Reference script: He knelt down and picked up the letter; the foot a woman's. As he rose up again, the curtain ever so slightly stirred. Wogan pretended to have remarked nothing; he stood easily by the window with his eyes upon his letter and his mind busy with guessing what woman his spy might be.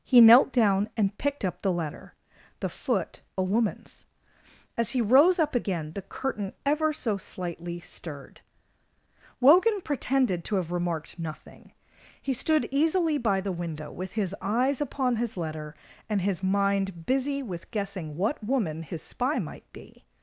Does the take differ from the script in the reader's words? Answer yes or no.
no